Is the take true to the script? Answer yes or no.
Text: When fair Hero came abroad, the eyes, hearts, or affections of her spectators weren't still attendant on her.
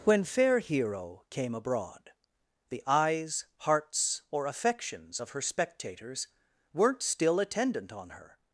yes